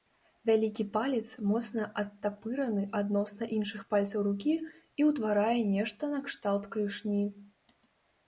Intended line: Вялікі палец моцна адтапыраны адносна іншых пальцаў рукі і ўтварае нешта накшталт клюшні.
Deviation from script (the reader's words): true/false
false